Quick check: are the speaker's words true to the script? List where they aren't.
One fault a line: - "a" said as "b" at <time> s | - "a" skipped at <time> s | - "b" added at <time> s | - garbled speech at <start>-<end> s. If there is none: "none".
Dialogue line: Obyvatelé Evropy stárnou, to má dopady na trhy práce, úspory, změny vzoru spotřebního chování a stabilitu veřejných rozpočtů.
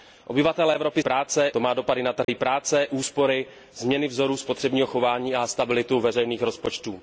- "stárnou" said as "práce" at 1.0 s